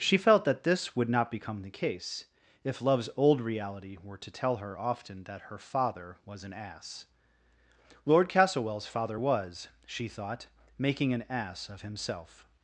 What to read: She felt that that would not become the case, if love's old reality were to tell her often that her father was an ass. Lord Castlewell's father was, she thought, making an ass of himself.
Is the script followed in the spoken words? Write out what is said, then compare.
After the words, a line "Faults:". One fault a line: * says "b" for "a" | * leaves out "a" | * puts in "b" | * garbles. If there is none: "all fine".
She felt that this would not become the case, if love's old reality were to tell her often that her father was an ass. Lord Castlewell's father was, she thought, making an ass of himself.
Faults:
* says "this" for "that"